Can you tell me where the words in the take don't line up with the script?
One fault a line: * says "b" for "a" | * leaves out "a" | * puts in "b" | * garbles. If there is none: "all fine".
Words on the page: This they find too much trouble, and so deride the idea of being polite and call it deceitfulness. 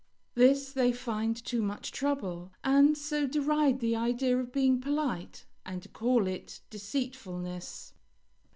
all fine